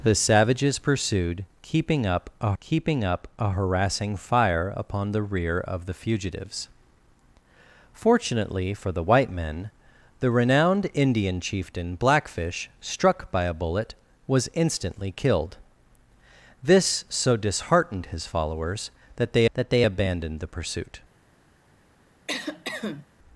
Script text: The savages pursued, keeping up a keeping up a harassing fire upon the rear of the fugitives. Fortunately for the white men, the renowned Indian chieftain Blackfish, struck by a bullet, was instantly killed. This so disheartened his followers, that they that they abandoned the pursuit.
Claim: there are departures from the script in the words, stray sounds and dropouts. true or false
true